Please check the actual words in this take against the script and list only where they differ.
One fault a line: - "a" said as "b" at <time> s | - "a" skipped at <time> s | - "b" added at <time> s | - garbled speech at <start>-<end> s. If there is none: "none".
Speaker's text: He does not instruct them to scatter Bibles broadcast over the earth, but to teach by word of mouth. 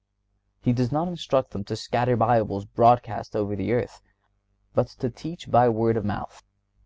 none